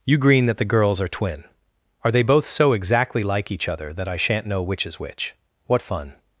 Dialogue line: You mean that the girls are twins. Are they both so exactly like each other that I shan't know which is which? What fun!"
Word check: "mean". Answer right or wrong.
wrong